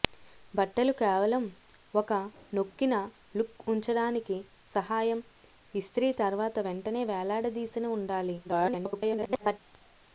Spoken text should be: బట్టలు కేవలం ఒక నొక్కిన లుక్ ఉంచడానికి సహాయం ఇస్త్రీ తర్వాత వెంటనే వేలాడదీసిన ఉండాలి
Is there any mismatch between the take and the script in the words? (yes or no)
yes